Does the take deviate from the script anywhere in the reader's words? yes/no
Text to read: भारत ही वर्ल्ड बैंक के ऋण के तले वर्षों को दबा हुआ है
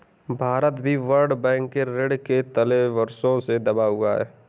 yes